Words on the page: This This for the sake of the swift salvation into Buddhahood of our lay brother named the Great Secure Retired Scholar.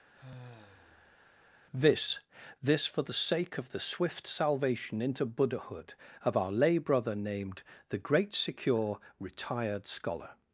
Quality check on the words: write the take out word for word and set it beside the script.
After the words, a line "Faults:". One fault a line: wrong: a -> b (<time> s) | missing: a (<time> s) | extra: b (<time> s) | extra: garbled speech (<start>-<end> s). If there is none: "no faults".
This This for the sake of the swift salvation into Buddhahood of our lay brother named the Great Secure Retired Scholar.
Faults:
no faults